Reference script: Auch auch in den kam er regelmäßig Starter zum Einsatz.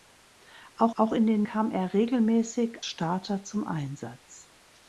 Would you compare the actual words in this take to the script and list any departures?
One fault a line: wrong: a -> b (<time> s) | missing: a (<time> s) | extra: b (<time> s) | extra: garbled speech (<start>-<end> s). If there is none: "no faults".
no faults